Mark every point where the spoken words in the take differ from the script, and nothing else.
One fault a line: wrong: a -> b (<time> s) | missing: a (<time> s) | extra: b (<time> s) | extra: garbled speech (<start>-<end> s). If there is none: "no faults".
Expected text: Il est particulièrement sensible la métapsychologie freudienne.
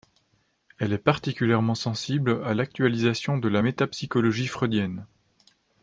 wrong: Il -> Elle (0.8 s)
extra: à l'actualisation de (2.4 s)